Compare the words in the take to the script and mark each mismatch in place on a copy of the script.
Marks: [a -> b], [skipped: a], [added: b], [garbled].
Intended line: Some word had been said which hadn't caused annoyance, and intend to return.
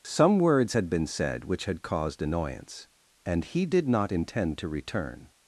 Some [word -> words] had been said which [hadn't -> had] caused annoyance, and [added: he did not] intend to return.